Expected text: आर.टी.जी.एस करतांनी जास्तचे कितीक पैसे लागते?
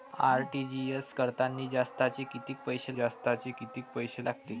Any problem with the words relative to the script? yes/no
yes